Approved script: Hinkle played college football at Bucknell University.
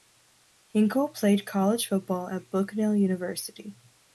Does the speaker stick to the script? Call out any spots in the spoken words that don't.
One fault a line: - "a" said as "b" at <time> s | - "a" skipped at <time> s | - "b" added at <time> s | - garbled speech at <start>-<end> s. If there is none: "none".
none